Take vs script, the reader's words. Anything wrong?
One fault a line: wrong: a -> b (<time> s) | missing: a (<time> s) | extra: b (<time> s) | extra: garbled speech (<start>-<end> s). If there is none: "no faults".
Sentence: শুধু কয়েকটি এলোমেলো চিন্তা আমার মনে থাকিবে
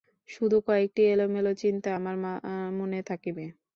no faults